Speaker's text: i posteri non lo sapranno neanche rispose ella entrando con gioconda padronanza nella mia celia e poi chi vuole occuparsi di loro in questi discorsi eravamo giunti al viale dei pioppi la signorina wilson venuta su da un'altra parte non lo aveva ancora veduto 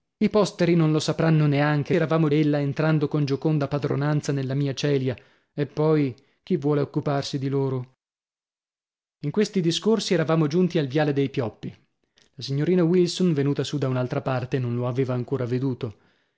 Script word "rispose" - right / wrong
wrong